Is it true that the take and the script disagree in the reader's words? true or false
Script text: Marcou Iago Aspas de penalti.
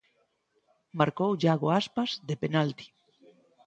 false